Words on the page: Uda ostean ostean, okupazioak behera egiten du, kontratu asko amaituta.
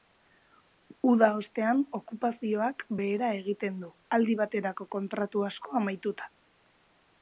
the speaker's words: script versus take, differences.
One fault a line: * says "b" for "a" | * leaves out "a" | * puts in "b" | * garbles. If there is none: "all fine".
* leaves out "ostean"
* puts in "aldi baterako"